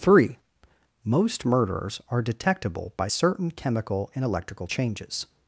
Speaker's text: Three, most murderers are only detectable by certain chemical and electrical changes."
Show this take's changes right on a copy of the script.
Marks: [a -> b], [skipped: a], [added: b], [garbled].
Three, most murderers are [skipped: only] detectable by certain chemical and electrical changes."